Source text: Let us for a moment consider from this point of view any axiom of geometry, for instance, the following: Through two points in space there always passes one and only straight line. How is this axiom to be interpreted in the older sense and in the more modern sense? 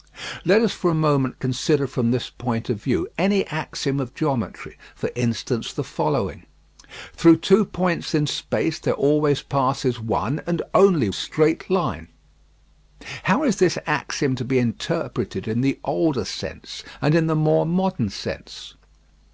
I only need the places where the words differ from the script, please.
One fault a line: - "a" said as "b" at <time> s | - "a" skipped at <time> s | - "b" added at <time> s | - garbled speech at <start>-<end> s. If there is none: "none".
none